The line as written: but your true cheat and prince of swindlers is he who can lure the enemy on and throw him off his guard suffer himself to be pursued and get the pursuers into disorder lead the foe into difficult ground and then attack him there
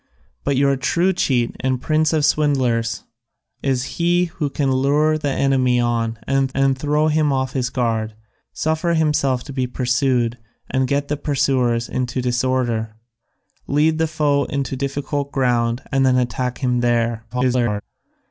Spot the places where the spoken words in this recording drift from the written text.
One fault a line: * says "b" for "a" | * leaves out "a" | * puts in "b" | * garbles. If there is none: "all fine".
* puts in "and"
* garbles